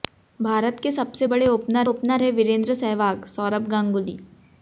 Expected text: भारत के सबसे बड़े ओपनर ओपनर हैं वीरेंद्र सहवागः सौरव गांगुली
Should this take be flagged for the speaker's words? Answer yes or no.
no